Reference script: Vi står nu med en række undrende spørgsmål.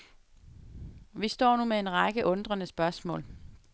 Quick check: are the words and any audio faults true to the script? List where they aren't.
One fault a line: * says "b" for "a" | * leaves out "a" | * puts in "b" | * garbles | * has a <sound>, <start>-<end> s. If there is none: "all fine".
all fine